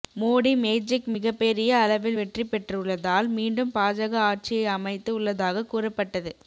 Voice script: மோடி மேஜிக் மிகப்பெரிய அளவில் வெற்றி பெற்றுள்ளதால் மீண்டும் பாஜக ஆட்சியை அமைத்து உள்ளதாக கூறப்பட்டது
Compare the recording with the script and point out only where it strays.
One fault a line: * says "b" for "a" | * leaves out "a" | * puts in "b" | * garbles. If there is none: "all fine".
all fine